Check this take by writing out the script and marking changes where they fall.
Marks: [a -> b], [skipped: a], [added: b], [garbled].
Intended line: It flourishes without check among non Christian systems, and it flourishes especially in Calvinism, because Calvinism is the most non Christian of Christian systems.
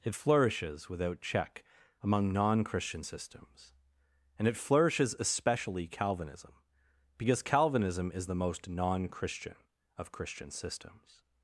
It flourishes without check among non Christian systems, and it flourishes especially [skipped: in] Calvinism, because Calvinism is the most non Christian of Christian systems.